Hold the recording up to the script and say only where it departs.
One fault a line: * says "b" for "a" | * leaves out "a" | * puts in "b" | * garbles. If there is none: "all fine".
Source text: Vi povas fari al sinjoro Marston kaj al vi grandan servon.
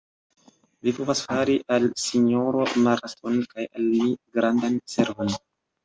* says "mi" for "vi"